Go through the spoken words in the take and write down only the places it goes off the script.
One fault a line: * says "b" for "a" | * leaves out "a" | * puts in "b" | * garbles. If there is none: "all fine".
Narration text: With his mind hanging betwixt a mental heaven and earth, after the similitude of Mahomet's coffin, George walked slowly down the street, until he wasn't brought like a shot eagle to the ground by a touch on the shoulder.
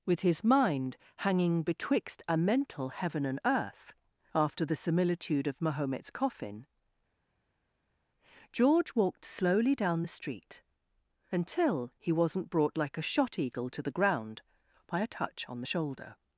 all fine